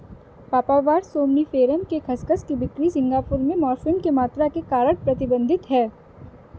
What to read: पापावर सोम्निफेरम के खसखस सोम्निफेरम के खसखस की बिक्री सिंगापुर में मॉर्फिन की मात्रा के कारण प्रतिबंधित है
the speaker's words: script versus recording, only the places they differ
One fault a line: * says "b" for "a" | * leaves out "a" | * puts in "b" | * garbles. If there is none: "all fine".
* leaves out "सोम्निफेरम के खसखस"